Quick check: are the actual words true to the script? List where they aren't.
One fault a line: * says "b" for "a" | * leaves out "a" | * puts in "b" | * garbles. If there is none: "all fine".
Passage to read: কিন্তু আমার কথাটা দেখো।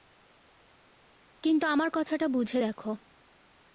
* puts in "বুঝে"